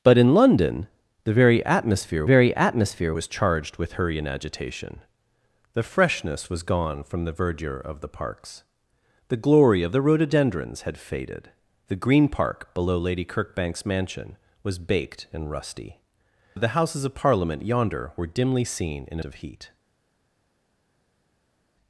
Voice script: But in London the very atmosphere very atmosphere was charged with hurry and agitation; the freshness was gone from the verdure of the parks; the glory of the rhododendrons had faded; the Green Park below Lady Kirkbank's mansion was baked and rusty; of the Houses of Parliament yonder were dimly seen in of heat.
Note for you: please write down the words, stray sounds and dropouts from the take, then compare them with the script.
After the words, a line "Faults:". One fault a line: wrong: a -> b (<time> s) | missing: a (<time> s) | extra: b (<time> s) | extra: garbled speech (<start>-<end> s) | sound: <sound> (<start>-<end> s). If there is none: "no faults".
But in London the very atmosphere very atmosphere was charged with hurry and agitation; the freshness was gone from the verdure of the parks; the glory of the rhododendrons had faded; the Green Park below Lady Kirkbank's mansion was baked and rusty; of the Houses of Parliament yonder were dimly seen in of heat.
Faults:
no faults